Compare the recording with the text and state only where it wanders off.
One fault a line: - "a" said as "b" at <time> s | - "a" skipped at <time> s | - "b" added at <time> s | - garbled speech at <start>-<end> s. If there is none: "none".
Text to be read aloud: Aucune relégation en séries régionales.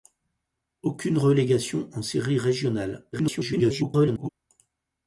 - garbled speech at 3.1-4.3 s